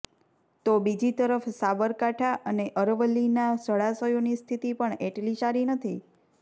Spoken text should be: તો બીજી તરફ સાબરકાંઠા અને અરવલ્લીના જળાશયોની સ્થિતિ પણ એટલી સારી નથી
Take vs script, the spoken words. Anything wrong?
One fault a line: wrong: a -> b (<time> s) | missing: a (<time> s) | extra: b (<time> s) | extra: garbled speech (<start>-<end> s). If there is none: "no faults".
no faults